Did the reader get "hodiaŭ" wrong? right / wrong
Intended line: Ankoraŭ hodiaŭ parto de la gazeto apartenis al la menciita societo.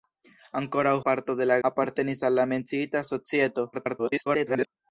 wrong